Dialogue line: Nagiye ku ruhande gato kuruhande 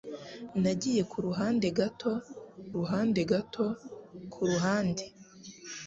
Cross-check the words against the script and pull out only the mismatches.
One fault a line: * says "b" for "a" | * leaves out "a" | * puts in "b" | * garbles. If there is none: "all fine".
* puts in "ruhande gato"